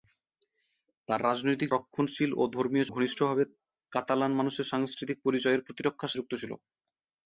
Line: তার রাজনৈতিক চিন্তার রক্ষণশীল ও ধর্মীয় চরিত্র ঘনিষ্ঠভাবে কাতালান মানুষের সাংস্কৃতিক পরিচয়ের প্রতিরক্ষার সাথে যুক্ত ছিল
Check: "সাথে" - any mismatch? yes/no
yes